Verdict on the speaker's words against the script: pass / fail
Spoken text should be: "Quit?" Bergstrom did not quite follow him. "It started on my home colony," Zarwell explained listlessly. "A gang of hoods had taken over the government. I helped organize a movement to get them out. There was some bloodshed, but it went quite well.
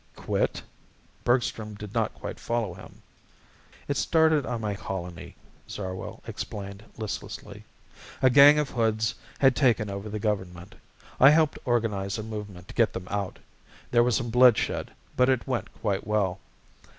fail